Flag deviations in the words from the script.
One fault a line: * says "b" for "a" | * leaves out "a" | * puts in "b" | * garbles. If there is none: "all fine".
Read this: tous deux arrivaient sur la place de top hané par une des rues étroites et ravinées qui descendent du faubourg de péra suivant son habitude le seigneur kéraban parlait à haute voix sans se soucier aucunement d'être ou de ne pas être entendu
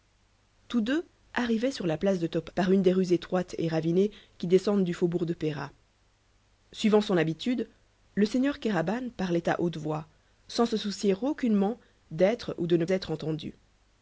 * leaves out "hané"
* leaves out "pas"